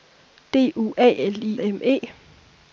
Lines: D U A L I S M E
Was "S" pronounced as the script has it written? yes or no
no